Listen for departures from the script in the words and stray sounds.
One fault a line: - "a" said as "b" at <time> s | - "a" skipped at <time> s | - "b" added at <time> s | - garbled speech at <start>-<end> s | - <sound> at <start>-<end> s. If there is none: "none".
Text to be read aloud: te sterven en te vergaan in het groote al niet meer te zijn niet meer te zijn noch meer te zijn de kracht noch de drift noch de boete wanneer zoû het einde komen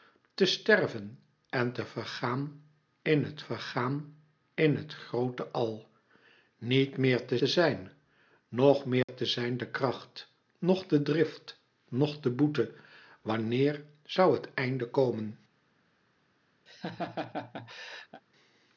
- "vergaan in het" added at 3.4 s
- "zijn niet meer" skipped at 7.4 s
- dropout at 9.0-9.1 s
- laugh at 16.7-18.2 s